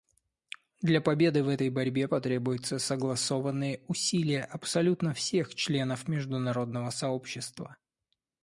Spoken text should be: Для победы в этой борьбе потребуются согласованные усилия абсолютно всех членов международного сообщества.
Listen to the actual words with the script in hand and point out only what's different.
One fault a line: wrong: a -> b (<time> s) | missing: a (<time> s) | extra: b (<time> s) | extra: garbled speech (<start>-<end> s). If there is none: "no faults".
no faults